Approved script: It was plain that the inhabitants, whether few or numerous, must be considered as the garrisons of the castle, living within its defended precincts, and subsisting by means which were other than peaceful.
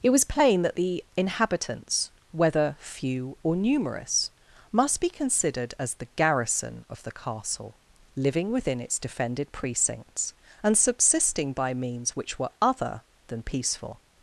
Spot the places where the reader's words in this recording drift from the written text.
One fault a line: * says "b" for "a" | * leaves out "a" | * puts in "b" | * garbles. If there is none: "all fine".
* says "garrison" for "garrisons"